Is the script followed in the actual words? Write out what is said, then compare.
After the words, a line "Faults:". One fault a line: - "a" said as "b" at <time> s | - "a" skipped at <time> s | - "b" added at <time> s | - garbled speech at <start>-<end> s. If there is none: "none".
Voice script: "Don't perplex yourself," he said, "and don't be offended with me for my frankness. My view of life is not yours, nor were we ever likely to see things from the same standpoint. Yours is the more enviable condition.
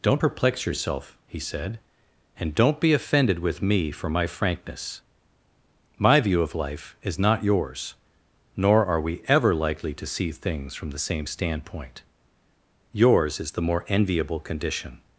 "Don't perplex yourself," he said, "and don't be offended with me for my frankness. My view of life is not yours, nor are we ever likely to see things from the same standpoint. Yours is the more enviable condition.
Faults:
- "were" said as "are" at 8.8 s